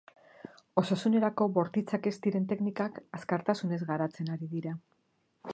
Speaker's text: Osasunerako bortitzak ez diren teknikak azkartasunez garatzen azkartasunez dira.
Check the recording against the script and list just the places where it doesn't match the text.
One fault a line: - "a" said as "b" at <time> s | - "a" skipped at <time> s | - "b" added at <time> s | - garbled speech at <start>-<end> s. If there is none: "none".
- "azkartasunez" said as "ari" at 4.4 s